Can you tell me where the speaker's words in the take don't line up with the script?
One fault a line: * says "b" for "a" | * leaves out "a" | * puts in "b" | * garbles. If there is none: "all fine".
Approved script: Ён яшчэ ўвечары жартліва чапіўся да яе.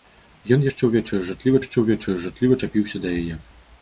* puts in "яшчэ ўвечары жартліва"